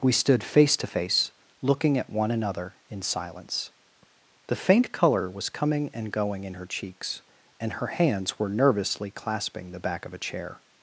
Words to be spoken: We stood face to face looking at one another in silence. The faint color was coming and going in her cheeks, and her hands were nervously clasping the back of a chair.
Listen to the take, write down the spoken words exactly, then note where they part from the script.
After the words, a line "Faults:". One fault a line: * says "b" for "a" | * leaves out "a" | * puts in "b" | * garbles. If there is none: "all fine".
We stood face to face looking at one another in silence. The faint color was coming and going in her cheeks, and her hands were nervously clasping the back of a chair.
Faults:
all fine